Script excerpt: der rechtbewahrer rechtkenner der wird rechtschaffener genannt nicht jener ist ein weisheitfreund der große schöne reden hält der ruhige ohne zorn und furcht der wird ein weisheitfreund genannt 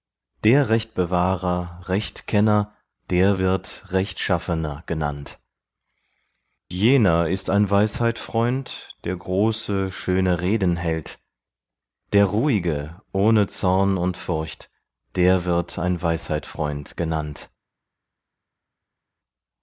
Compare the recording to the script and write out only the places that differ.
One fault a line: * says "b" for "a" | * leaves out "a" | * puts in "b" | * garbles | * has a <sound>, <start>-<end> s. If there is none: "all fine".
* leaves out "nicht"